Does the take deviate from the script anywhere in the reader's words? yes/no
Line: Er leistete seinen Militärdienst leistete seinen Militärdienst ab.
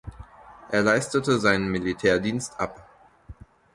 yes